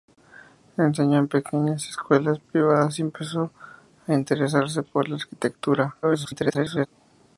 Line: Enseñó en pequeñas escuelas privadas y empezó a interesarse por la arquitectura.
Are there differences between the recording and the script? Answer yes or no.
yes